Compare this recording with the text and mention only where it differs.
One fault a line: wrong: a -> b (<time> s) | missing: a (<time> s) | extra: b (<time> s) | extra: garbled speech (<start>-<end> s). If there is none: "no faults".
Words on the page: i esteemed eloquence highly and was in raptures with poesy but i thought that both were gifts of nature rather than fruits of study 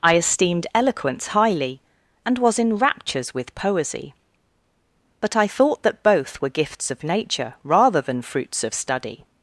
no faults